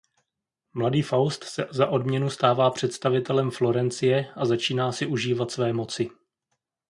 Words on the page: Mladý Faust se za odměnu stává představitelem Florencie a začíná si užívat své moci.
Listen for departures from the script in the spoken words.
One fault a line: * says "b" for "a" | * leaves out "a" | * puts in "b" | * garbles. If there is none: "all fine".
all fine